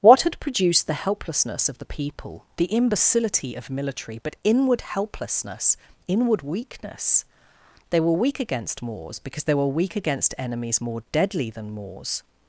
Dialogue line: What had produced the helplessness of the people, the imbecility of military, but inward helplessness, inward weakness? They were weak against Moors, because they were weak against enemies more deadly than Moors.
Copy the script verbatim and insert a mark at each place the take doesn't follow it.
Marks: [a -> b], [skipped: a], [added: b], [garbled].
What had produced the helplessness of the people, the imbecility of military, but inward helplessness, inward weakness? They were weak against Moors, because they were weak against enemies more deadly than Moors.